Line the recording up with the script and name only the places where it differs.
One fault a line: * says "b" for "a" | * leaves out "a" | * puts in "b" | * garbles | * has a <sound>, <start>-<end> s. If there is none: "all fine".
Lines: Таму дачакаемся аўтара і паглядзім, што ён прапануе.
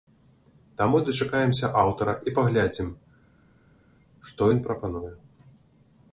all fine